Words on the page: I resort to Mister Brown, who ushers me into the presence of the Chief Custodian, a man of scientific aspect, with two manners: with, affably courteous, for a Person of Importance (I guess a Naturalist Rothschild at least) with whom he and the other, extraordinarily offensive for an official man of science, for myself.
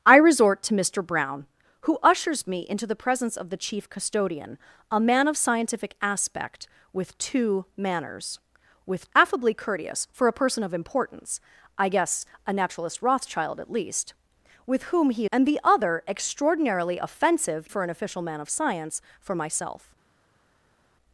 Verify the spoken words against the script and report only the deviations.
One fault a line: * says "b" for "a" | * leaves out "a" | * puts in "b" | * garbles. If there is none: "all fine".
all fine